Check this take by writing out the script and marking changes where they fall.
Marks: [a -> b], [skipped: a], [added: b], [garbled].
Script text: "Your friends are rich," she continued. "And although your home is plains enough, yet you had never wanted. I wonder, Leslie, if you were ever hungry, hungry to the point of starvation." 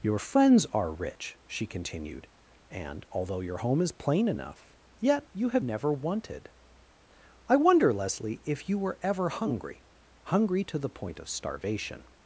"Your friends are rich," she continued. "And although your home is [plains -> plain] enough, yet you [had -> have] never wanted. I wonder, Leslie, if you were ever hungry, hungry to the point of starvation."